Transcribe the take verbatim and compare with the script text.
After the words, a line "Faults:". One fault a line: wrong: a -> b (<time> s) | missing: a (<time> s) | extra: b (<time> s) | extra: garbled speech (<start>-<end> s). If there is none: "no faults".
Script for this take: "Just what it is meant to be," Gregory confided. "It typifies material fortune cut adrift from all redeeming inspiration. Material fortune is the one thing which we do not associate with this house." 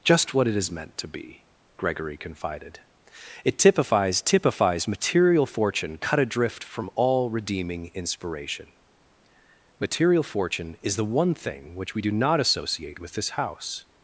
"Just what it is meant to be," Gregory confided. "It typifies typifies material fortune cut adrift from all redeeming inspiration. Material fortune is the one thing which we do not associate with this house."
Faults:
extra: typifies (4.2 s)